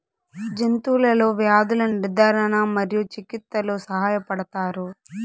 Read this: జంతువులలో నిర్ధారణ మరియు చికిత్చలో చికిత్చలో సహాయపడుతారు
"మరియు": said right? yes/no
yes